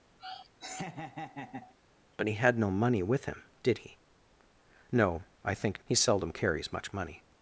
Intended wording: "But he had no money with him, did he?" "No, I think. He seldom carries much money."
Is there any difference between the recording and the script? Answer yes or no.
no